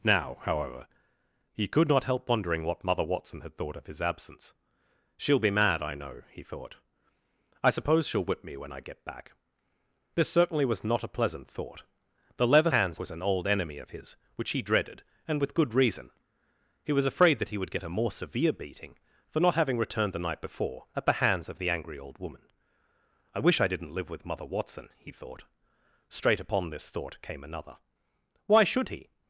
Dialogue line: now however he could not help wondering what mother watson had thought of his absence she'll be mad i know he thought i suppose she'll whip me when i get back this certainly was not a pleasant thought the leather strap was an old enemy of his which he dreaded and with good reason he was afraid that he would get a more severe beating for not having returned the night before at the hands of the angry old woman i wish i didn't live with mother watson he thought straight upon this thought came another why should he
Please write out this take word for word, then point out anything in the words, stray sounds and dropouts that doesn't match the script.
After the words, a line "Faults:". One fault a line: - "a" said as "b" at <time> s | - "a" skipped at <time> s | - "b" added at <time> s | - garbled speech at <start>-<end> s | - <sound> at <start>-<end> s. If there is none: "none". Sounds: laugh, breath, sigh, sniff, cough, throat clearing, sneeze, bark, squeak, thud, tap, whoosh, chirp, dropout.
now however he could not help wondering what mother watson had thought of his absence she'll be mad i know he thought i suppose she'll whip me when i get back this certainly was not a pleasant thought the leather hands was an old enemy of his which he dreaded and with good reason he was afraid that he would get a more severe beating for not having returned the night before at the hands of the angry old woman i wish i didn't live with mother watson he thought straight upon this thought came another why should he
Faults:
- "strap" said as "hands" at 12.7 s